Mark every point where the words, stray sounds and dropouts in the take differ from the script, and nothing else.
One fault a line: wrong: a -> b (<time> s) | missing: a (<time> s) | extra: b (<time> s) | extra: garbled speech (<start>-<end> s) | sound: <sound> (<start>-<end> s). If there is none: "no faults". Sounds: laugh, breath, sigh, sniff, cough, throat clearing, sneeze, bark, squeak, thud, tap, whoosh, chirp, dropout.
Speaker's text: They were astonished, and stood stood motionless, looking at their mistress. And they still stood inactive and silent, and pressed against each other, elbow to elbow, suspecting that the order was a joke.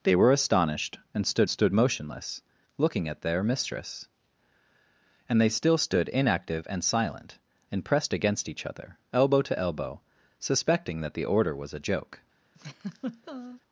sound: laugh (12.5-13.6 s)